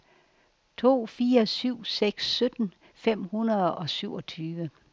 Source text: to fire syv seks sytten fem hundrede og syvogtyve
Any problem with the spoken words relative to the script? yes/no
no